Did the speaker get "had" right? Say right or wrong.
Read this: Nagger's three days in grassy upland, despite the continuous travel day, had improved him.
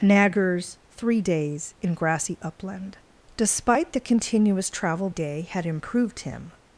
right